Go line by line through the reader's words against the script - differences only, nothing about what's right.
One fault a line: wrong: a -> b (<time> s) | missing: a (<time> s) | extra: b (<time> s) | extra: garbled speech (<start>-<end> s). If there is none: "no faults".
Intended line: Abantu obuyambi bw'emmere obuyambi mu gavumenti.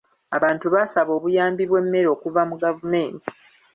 extra: baasaba (0.7 s)
wrong: obuyambi -> okuva (2.2 s)